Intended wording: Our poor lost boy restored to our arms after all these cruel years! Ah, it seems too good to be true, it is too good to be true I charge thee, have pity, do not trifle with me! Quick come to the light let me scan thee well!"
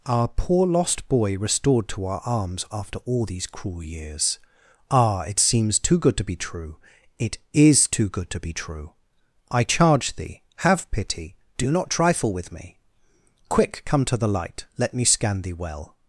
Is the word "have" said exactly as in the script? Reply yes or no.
yes